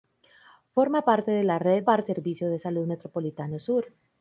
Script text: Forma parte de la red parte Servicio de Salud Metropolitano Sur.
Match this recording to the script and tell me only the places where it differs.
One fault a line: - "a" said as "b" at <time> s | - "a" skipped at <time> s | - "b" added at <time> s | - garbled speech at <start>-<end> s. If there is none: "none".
none